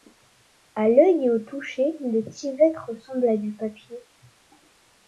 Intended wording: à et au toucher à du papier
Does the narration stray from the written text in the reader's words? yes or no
yes